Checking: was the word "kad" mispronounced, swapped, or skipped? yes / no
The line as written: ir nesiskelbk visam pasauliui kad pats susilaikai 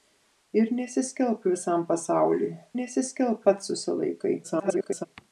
yes